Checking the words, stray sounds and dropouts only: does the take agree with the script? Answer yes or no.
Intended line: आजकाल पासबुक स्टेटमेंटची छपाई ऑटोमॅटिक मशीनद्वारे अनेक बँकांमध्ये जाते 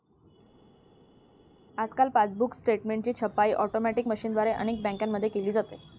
no